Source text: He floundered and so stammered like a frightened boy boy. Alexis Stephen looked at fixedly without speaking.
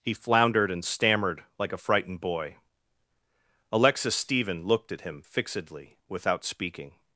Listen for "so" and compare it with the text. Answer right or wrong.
wrong